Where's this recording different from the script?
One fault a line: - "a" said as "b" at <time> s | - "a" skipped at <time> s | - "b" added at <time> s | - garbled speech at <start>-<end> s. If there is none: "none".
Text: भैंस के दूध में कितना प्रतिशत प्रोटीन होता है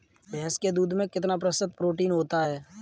none